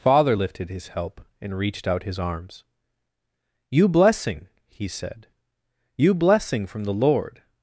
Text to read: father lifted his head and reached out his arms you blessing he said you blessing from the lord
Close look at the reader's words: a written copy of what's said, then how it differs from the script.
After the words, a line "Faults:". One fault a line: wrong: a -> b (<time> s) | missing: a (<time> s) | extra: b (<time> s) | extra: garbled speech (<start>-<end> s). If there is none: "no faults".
father lifted his help and reached out his arms you blessing he said you blessing from the lord
Faults:
wrong: head -> help (0.9 s)